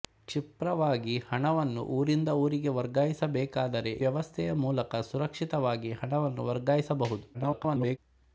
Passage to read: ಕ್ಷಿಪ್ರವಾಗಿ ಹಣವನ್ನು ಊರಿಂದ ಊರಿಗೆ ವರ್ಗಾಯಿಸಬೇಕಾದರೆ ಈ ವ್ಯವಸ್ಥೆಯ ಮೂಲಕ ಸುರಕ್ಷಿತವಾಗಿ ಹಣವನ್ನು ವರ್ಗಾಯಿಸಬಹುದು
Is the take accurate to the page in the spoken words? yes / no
no